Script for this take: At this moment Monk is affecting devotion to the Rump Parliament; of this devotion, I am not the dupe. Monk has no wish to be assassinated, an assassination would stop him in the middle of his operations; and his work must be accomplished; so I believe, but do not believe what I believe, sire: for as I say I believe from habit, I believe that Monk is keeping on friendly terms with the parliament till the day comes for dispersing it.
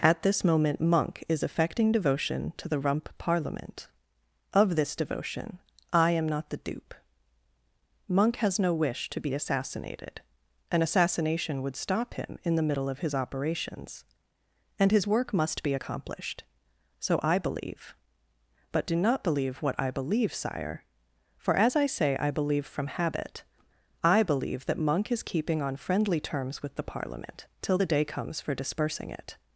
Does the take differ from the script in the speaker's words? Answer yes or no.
no